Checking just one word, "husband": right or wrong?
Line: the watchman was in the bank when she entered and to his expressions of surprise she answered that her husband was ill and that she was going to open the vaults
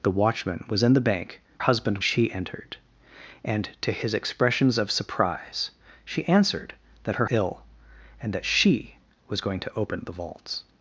wrong